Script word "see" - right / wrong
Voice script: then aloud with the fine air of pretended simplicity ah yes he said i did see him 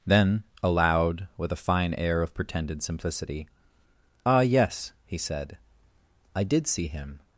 right